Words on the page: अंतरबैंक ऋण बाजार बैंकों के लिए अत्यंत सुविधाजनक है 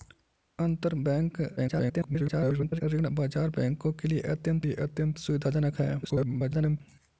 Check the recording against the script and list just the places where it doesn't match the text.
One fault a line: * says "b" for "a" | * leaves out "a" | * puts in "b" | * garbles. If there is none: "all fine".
* garbles
* puts in "लिए अत्यंत"
* garbles